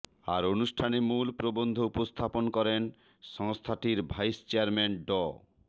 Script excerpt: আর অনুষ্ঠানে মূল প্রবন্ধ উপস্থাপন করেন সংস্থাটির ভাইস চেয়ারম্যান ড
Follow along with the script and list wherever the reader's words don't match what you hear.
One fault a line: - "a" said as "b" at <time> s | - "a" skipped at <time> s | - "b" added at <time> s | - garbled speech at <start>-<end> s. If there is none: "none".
none